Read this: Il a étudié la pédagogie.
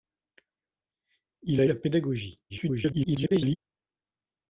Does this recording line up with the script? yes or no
no